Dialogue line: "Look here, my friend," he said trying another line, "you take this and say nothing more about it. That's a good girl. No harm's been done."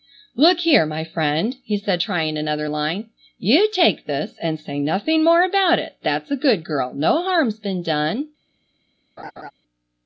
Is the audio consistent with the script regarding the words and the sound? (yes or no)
no